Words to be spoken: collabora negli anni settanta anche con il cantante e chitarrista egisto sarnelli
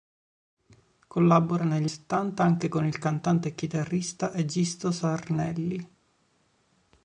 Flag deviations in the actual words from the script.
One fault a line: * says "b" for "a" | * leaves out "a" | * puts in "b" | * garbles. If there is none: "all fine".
* leaves out "anni"